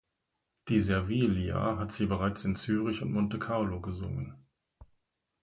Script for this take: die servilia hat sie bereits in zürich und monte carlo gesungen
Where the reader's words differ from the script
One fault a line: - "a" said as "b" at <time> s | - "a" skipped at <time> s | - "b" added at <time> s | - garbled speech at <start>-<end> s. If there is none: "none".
none